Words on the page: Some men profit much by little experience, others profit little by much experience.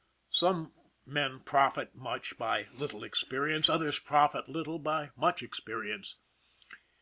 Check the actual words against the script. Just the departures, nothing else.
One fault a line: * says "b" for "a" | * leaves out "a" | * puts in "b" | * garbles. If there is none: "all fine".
all fine